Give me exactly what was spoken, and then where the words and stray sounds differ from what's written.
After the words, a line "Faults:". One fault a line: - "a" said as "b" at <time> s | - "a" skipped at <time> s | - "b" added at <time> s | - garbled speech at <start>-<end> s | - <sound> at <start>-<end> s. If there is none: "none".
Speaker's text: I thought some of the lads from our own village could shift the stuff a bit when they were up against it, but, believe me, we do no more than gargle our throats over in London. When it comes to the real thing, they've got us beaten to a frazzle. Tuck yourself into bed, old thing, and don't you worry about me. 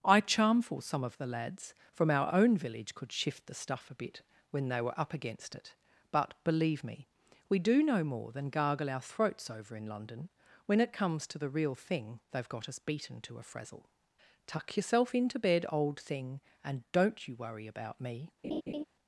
I charmful some of the lads from our own village could shift the stuff a bit when they were up against it, but, believe me, we do no more than gargle our throats over in London. When it comes to the real thing, they've got us beaten to a frazzle. Tuck yourself into bed, old thing, and don't you worry about me.
Faults:
- "thought" said as "charmful" at 0.2 s
- laugh at 18.4-18.8 s